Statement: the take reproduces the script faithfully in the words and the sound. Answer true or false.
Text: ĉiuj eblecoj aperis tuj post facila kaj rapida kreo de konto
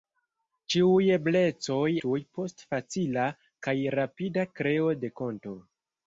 false